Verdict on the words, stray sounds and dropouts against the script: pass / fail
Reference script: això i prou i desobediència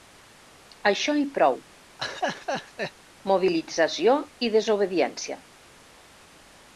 fail